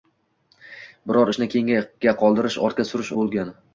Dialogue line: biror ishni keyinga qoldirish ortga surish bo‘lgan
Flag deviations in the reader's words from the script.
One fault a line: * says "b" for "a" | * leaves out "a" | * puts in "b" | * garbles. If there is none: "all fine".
all fine